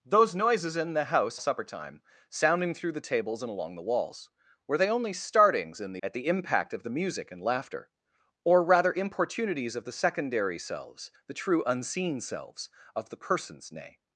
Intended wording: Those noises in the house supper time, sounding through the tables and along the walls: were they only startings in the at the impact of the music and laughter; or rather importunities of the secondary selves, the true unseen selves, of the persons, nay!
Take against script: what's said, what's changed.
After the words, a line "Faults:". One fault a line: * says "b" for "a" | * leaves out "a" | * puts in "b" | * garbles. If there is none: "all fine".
Those noises in the house supper time, sounding through the tables and along the walls: were they only startings in the at the impact of the music and laughter; or rather importunities of the secondary selves, the true unseen selves, of the persons, nay!
Faults:
all fine